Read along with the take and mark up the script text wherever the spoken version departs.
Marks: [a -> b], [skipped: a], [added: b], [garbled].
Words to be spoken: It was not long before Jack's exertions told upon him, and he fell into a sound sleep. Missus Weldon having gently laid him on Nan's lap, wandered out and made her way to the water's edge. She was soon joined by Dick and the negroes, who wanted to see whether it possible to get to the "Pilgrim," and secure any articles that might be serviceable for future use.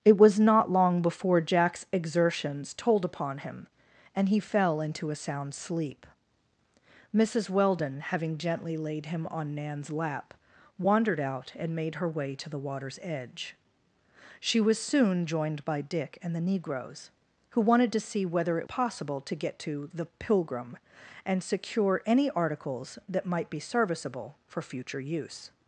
It was not long before Jack's exertions told upon him, and he fell into a sound sleep. Missus Weldon having gently laid him on Nan's lap, wandered out and made her way to the water's edge. She was soon joined by Dick and the negroes, who wanted to see whether it possible to get to the "Pilgrim," and secure any articles that might be serviceable for future use.